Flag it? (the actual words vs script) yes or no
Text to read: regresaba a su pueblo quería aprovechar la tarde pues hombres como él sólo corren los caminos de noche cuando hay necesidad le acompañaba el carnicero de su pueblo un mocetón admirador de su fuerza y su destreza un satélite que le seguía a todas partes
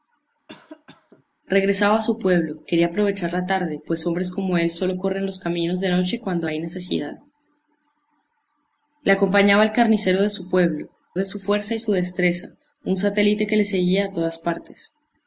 yes